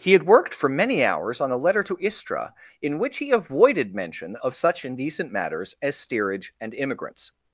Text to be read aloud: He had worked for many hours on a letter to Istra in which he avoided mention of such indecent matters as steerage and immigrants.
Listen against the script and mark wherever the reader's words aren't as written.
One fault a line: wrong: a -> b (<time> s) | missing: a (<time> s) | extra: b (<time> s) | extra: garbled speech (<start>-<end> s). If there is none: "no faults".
no faults